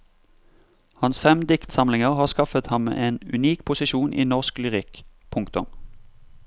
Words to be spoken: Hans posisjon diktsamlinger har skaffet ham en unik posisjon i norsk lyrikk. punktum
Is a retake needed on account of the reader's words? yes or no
yes